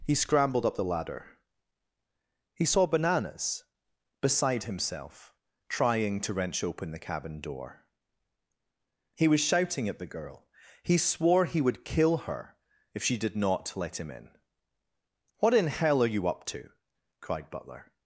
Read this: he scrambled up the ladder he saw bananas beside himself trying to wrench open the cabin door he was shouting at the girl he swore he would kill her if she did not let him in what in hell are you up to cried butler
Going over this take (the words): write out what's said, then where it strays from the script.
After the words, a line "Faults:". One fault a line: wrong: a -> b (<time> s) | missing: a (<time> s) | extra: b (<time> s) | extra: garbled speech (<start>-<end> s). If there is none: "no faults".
he scrambled up the ladder he saw bananas beside himself trying to wrench open the cabin door he was shouting at the girl he swore he would kill her if she did not let him in what in hell are you up to cried butler
Faults:
no faults